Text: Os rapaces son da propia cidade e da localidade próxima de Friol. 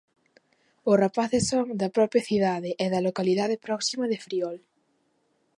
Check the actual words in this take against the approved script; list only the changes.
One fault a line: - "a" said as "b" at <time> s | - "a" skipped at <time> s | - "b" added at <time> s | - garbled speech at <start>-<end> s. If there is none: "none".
none